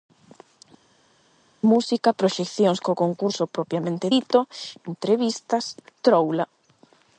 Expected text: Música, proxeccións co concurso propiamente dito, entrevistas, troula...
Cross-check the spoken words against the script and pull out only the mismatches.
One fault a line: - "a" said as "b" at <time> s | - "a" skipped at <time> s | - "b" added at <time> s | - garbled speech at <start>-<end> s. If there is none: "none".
none